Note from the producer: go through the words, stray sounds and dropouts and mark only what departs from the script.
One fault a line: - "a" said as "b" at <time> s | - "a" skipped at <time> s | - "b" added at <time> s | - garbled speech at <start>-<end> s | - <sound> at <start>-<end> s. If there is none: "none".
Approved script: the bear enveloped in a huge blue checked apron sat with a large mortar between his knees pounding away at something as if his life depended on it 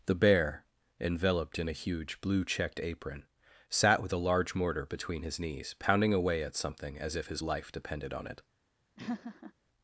- laugh at 9.0-9.5 s